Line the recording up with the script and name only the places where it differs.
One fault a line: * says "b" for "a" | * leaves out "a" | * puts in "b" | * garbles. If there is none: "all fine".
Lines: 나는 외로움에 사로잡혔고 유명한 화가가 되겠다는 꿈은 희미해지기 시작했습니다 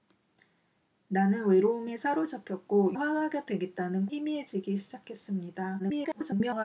* leaves out "유명한"
* leaves out "꿈은"
* garbles